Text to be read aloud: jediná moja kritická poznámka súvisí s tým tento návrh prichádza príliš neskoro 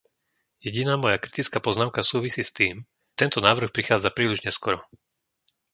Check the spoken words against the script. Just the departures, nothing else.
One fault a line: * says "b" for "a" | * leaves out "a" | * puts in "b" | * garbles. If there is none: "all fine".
all fine